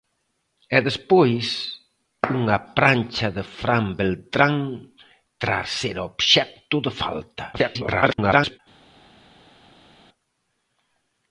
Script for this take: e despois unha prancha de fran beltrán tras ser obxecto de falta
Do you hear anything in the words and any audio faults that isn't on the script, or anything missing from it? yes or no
yes